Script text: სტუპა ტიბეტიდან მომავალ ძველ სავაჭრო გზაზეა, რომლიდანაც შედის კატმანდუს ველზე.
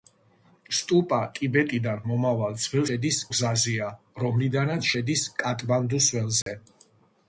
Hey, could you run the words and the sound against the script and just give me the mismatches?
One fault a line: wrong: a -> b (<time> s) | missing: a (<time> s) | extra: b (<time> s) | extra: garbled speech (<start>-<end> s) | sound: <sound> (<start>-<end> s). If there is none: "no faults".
wrong: სავაჭრო -> შედის (2.9 s)
sound: dropout (6.4-6.5 s)